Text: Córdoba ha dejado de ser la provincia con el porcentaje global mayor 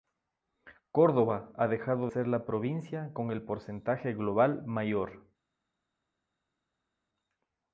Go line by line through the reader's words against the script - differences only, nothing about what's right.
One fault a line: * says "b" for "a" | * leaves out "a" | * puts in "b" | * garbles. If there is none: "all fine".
* leaves out "de"